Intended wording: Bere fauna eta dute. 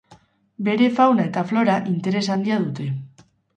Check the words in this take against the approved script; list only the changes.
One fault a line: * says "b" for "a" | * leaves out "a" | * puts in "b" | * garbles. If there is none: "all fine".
* puts in "flora interes handia"